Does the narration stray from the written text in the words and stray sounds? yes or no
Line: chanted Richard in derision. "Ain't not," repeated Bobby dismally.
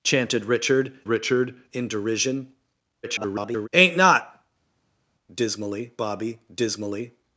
yes